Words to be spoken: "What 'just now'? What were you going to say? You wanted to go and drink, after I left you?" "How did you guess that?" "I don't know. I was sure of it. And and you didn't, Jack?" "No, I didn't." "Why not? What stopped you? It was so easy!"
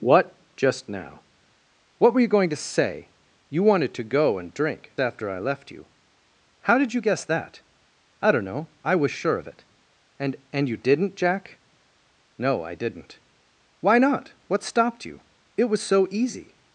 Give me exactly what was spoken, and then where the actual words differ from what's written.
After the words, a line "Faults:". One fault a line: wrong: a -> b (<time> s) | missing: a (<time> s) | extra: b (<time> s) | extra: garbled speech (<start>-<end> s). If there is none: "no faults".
"What 'just now'? What were you going to say? You wanted to go and drink, after I left you?" "How did you guess that?" "I don't know. I was sure of it. And and you didn't, Jack?" "No, I didn't." "Why not? What stopped you? It was so easy!"
Faults:
no faults